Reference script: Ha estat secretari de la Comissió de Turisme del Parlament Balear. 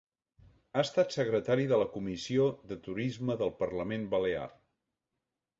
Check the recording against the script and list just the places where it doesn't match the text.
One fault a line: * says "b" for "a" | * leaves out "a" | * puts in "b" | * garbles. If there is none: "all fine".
all fine